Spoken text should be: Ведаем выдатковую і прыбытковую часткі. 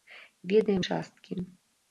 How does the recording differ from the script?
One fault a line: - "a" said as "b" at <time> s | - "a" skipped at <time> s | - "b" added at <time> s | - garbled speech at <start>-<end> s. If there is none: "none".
- "выдатковую і прыбытковую" skipped at 0.8 s